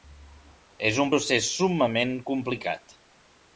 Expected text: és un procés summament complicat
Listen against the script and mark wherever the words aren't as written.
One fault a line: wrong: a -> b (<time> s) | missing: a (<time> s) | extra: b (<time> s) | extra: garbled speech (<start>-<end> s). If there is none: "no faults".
no faults